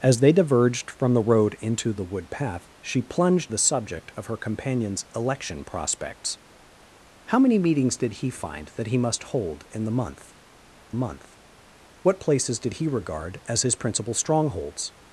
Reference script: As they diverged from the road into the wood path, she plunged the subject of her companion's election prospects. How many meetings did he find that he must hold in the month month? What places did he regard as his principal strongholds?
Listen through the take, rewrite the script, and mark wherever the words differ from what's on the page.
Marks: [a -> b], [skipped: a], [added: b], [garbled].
As they diverged from the road into the wood path, she plunged the subject of her companion's election prospects. How many meetings did he find that he must hold in the month month? What places did he regard as his principal strongholds?